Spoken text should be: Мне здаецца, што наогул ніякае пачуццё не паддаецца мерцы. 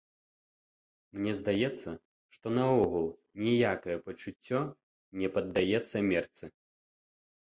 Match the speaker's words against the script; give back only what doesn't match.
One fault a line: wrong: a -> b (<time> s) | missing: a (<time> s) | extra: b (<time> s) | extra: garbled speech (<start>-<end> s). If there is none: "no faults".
no faults